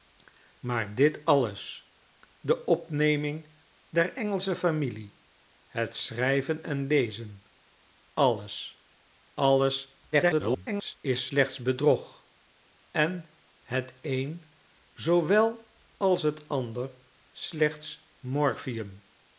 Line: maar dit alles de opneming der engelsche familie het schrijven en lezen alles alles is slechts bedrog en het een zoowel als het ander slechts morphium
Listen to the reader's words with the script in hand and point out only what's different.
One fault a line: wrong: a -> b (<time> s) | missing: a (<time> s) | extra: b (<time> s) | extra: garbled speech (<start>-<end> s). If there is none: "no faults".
extra: garbled speech (10.1-11.0 s)